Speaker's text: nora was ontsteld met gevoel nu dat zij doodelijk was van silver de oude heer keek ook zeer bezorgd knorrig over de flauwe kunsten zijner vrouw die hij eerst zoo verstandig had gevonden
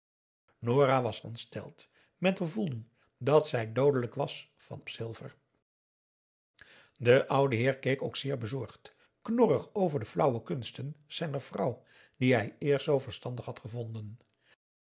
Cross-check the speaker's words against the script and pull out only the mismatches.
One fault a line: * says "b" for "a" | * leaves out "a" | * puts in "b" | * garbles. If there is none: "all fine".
all fine